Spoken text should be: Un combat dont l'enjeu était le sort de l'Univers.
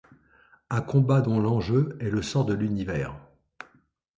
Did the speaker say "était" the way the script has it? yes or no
no